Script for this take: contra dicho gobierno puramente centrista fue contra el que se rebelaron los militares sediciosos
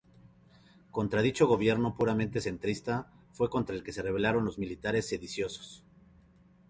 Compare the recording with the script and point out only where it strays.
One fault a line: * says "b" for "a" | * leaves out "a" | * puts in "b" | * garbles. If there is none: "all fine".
all fine